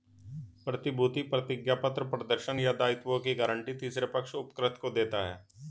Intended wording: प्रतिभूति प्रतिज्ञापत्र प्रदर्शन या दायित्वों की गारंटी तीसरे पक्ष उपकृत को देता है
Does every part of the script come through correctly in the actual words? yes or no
yes